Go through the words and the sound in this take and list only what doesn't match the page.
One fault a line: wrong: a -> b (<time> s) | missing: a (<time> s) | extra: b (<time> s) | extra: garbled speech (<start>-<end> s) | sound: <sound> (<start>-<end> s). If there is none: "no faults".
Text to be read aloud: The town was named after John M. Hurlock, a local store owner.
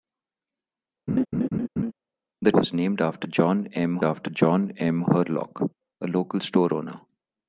sound: laugh (1.1-1.9 s)
missing: town (2.5 s)
extra: after John M (4.0 s)